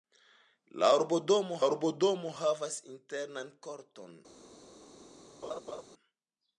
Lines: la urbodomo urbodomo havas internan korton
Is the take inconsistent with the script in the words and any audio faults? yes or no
yes